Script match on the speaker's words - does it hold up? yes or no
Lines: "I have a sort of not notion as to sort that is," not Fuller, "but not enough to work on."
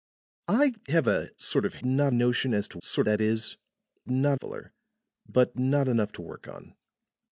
yes